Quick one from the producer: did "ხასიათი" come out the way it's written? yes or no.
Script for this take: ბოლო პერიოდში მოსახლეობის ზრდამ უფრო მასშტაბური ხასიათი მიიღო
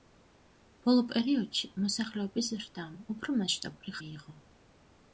no